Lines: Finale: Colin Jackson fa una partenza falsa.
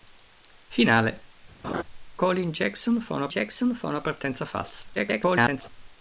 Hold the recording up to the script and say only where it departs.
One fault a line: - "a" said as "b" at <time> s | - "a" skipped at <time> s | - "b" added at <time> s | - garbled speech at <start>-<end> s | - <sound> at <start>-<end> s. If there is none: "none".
- laugh at 1.6-1.8 s
- "Jackson fa una" added at 3.3 s
- garbled speech at 4.9-5.7 s